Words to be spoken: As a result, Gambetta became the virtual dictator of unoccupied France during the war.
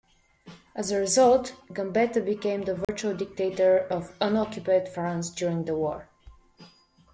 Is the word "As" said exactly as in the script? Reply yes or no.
yes